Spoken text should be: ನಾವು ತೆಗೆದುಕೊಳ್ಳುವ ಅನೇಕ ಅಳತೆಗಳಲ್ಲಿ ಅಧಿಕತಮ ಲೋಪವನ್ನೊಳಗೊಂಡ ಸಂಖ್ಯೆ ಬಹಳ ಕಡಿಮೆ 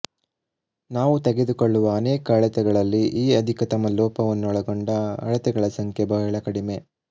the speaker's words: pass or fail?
fail